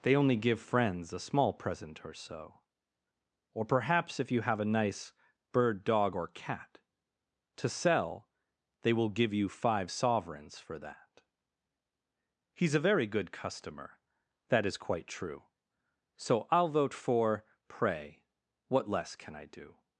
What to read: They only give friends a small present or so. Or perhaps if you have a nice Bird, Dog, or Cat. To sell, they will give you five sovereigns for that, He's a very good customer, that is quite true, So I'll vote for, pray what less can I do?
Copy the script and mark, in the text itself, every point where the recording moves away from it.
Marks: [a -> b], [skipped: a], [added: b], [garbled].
They only give friends a small present or so. Or perhaps if you have a nice Bird, Dog, or Cat. To sell, they will give you five sovereigns for that, He's a very good customer, that is quite true, So I'll vote for, pray what less can I do?